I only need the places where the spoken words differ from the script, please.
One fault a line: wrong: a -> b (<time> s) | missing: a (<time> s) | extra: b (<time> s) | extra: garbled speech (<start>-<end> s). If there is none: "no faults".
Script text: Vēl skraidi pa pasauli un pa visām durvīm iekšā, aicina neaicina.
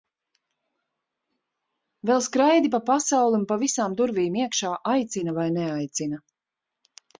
extra: vai (5.4 s)